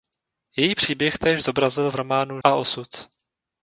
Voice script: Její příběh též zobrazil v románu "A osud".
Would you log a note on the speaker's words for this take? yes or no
no